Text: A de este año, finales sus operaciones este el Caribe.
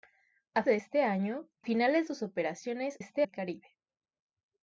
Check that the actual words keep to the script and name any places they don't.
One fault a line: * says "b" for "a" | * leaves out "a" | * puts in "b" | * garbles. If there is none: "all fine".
all fine